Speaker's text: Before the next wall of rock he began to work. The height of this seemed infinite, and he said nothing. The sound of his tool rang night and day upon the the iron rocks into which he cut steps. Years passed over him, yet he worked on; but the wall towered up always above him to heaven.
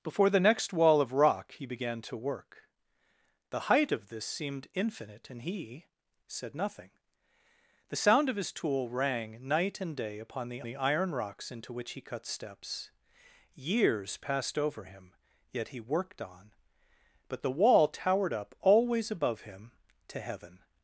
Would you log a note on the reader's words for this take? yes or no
no